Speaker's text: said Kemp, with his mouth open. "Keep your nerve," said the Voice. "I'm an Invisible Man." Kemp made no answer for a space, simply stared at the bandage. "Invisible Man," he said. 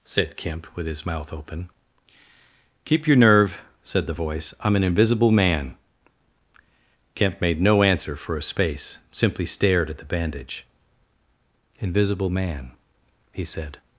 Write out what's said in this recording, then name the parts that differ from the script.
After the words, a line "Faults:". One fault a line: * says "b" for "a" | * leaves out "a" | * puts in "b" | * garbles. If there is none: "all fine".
said Kemp, with his mouth open. "Keep your nerve," said the Voice. "I'm an Invisible Man." Kemp made no answer for a space, simply stared at the bandage. "Invisible Man," he said.
Faults:
all fine